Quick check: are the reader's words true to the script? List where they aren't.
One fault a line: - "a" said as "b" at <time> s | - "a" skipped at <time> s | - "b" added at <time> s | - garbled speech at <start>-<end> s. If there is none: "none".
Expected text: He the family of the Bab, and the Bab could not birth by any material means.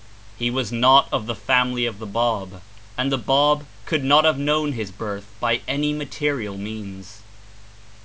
- "was not of" added at 0.5 s
- "have known his" added at 4.2 s